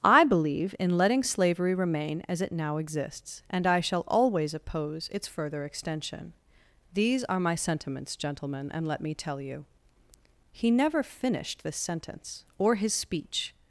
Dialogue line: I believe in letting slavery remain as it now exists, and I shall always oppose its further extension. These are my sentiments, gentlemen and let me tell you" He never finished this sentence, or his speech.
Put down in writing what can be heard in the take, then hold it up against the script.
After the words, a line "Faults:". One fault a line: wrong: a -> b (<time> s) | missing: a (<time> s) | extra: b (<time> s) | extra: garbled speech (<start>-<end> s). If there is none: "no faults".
I believe in letting slavery remain as it now exists, and I shall always oppose its further extension. These are my sentiments, gentlemen and let me tell you" He never finished this sentence, or his speech.
Faults:
no faults